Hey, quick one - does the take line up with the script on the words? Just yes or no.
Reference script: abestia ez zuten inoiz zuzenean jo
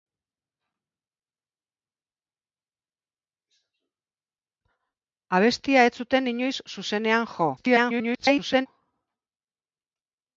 no